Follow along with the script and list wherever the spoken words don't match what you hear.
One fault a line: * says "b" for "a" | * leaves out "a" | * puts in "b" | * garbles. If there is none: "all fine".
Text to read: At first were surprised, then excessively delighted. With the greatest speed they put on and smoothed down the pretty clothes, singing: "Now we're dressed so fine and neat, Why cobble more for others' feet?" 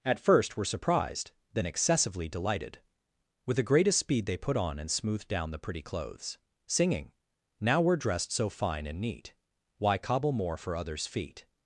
all fine